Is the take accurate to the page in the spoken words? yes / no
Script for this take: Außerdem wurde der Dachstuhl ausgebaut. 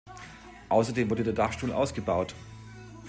yes